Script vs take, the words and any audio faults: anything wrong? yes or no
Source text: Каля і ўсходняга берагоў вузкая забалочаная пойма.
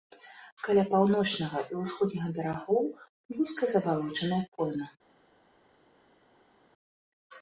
yes